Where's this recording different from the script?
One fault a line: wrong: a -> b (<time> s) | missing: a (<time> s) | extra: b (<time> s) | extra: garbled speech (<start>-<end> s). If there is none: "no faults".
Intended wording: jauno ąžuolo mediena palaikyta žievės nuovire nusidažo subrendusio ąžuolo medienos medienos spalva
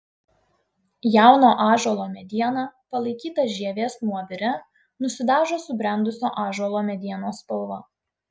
missing: medienos (7.4 s)